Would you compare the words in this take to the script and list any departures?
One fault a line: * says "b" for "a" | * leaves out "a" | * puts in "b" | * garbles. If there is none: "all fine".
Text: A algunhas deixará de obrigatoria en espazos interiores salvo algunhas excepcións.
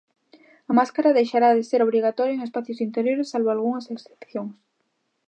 * says "máscara" for "algunhas"
* puts in "ser"